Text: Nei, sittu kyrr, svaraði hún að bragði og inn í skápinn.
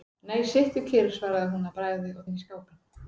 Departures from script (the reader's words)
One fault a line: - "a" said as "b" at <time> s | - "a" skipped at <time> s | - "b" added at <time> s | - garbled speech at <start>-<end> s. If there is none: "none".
none